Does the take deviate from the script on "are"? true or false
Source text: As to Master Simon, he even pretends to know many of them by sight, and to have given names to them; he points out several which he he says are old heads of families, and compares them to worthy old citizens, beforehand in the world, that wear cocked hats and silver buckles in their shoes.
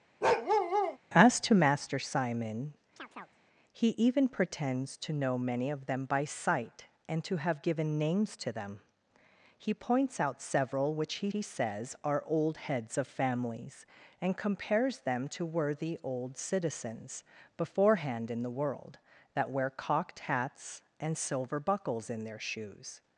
false